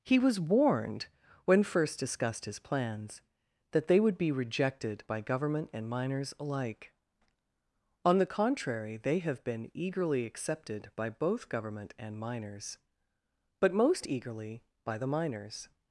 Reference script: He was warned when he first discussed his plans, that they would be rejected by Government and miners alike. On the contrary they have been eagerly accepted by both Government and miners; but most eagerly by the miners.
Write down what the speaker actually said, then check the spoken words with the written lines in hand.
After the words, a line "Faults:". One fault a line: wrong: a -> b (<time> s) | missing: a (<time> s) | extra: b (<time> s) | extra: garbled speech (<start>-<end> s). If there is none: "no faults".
He was warned when first discussed his plans, that they would be rejected by Government and miners alike. On the contrary they have been eagerly accepted by both Government and miners; but most eagerly by the miners.
Faults:
missing: he (1.6 s)